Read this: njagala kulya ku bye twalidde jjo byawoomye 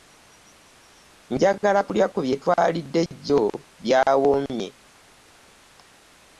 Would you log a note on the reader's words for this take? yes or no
no